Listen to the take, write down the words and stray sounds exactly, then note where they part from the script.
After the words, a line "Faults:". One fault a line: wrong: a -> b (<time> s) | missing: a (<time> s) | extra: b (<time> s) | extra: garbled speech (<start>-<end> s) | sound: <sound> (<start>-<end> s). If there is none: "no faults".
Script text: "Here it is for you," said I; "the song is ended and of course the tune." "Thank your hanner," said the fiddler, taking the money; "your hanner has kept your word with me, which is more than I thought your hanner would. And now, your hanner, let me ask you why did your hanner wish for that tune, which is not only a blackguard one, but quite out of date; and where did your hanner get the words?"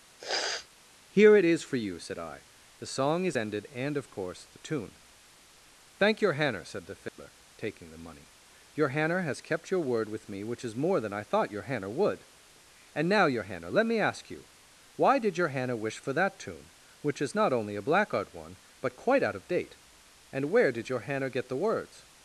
"Here it is for you," said I; "the song is ended and of course the tune." "Thank your hanner," said the fiddler, taking the money; "your hanner has kept your word with me, which is more than I thought your hanner would. And now, your hanner, let me ask you why did your hanner wish for that tune, which is not only a blackguard one, but quite out of date; and where did your hanner get the words?"
Faults:
sound: sniff (0.2-0.7 s)
sound: dropout (7.1-7.2 s)